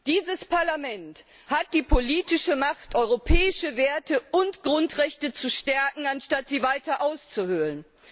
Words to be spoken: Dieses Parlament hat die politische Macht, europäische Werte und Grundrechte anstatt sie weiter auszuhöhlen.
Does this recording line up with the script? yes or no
no